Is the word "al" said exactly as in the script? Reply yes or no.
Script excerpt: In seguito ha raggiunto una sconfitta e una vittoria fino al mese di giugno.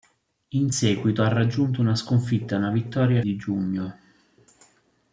no